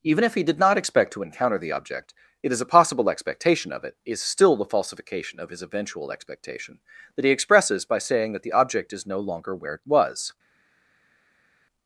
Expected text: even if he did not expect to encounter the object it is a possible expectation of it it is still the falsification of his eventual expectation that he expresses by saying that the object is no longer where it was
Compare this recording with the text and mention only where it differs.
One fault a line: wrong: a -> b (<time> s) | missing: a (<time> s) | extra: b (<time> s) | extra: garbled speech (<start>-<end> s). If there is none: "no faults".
missing: it (4.0 s)